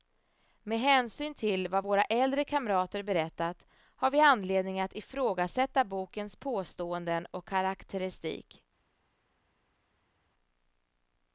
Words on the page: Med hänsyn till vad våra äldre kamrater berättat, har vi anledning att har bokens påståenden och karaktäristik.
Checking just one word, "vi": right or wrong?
right